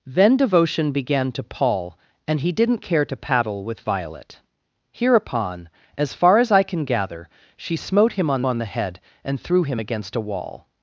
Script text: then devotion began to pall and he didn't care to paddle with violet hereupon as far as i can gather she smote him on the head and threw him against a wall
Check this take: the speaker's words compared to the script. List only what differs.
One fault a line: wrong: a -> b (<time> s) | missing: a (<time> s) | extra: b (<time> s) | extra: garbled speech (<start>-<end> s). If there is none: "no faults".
extra: on (8.4 s)